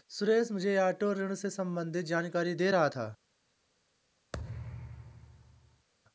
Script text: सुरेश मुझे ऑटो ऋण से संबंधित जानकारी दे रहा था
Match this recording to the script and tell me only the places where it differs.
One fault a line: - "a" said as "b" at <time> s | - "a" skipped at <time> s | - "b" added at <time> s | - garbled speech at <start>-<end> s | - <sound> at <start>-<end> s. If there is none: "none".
- thud at 4.3-5.9 s